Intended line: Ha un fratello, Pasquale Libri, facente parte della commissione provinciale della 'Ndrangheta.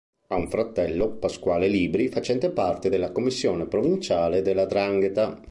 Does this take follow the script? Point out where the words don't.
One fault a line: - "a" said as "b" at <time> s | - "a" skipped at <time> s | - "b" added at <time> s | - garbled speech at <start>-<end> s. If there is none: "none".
none